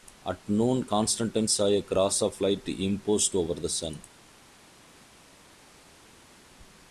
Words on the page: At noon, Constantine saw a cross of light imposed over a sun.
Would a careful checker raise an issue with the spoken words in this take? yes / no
yes